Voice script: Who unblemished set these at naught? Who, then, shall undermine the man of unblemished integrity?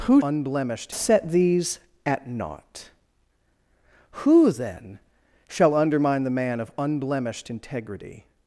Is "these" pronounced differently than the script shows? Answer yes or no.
no